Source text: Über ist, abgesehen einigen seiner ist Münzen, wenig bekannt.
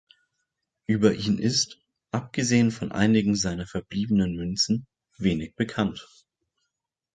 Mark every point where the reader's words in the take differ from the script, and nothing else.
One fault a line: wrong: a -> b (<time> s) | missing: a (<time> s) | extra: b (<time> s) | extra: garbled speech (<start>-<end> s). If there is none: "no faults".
extra: ihn (1.1 s)
extra: von (2.7 s)
wrong: ist -> verbliebenen (3.7 s)